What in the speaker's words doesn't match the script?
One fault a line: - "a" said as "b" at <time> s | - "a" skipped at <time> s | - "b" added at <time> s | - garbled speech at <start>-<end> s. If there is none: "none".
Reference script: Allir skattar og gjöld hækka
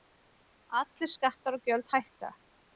none